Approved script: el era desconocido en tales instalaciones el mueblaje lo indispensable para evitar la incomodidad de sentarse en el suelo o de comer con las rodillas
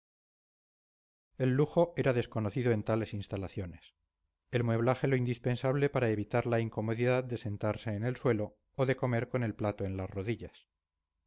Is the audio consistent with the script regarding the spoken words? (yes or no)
no